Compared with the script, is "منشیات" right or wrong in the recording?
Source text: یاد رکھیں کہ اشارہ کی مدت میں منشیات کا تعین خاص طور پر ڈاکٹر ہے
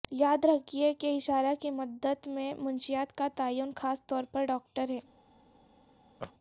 right